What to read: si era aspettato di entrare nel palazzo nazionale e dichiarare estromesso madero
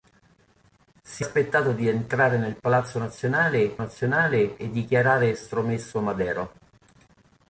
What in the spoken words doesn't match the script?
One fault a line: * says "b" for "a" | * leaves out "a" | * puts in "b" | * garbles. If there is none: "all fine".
* leaves out "era"
* puts in "nazionale"